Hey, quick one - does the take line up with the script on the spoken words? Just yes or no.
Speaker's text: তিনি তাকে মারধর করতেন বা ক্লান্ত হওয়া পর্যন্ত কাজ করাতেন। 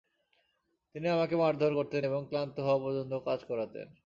no